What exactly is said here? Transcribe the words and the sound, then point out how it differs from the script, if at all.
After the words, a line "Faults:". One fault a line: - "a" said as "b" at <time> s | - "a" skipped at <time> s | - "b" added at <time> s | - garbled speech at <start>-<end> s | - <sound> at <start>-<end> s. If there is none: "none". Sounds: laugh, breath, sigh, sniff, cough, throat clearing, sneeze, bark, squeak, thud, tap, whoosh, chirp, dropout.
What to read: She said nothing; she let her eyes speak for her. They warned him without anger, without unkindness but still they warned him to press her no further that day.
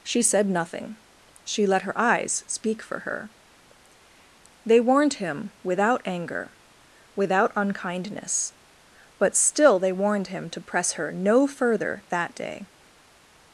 She said nothing; she let her eyes speak for her. They warned him without anger, without unkindness but still they warned him to press her no further that day.
Faults:
none